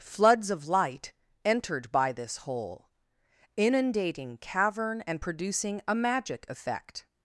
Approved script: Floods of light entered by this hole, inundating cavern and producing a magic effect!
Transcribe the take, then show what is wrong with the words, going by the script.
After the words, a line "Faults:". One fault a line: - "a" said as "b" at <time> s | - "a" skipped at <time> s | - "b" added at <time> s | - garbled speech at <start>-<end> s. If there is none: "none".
Floods of light entered by this hole, inundating cavern and producing a magic effect!
Faults:
none